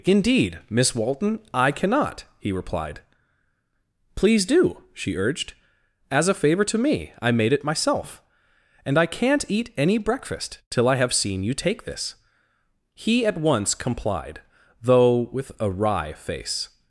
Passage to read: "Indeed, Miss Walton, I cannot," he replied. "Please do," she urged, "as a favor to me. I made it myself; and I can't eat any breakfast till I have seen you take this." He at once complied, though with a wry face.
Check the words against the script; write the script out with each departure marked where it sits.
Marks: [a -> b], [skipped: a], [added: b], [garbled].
"Indeed, Miss Walton, I cannot," he replied. "Please do," she urged, "as a favor to me. I made it myself; and I can't eat any breakfast till I have seen you take this." He at once complied, though with a wry face.